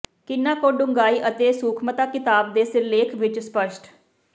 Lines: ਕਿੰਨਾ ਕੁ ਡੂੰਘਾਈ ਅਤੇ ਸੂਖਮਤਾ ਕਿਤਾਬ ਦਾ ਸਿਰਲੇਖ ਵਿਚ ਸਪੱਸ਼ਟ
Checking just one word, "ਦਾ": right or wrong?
wrong